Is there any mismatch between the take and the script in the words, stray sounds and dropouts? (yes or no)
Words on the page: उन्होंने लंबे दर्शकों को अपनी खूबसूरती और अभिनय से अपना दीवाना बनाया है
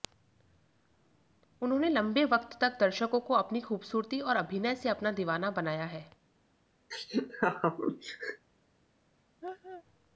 yes